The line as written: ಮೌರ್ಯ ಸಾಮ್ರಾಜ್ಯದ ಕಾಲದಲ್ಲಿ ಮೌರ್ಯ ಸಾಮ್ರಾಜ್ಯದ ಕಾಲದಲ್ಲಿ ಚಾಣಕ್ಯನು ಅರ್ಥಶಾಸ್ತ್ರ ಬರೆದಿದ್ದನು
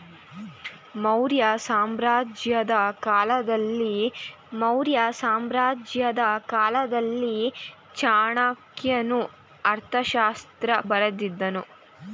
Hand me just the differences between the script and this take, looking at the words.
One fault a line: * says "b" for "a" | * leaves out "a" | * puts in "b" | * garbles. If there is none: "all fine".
all fine